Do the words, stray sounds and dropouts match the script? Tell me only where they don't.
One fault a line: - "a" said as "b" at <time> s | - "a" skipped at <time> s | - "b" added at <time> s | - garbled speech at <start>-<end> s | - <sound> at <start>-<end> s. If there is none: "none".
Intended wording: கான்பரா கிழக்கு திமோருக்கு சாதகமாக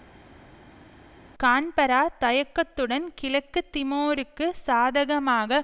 - "தயக்கத்துடன்" added at 2.2 s